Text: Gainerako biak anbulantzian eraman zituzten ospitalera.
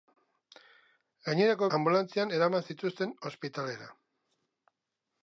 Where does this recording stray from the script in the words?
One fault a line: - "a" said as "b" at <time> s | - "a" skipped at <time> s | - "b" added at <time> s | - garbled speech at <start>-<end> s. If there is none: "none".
- "biak" skipped at 1.7 s